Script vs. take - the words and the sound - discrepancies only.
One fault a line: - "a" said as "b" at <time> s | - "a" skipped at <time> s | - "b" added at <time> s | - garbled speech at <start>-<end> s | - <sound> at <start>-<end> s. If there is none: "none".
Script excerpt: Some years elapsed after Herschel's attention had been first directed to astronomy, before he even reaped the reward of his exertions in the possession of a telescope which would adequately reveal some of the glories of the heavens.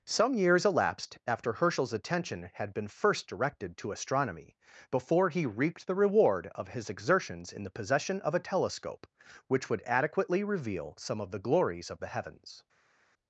- "even" skipped at 5.4 s